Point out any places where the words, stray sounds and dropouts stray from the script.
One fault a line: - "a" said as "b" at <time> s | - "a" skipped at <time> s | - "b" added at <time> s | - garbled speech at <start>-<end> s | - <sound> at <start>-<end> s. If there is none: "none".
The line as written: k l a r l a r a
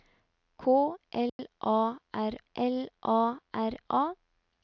- dropout at 1.3-1.4 s